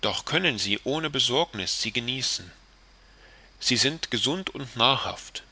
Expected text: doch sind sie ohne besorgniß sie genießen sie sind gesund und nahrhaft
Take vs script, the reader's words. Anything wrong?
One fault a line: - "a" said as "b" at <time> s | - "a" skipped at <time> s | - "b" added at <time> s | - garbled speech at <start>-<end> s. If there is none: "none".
- "sind" said as "können" at 0.2 s